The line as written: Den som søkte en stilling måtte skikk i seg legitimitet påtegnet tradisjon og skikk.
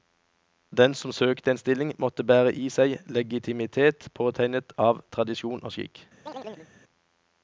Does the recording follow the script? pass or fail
fail